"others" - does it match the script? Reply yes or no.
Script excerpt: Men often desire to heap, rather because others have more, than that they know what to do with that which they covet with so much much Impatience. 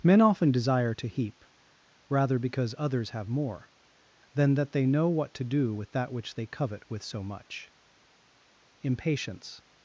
yes